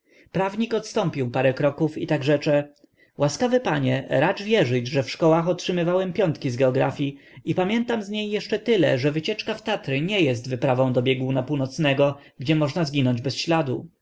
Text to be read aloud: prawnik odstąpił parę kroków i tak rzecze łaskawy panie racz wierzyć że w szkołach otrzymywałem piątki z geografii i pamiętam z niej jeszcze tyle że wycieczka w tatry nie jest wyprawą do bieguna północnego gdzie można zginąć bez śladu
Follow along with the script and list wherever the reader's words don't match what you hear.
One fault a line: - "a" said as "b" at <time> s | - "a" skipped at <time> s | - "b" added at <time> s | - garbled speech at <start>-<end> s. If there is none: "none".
none